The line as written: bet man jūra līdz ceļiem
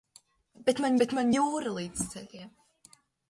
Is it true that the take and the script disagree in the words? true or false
true